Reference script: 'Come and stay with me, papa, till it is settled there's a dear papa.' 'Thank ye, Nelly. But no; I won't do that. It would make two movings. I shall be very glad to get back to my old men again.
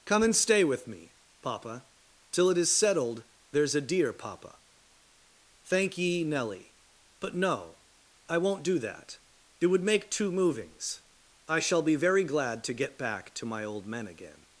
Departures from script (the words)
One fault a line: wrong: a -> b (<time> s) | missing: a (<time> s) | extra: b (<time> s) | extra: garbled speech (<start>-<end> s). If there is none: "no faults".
no faults